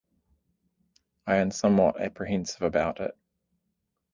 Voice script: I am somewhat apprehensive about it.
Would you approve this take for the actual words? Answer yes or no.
yes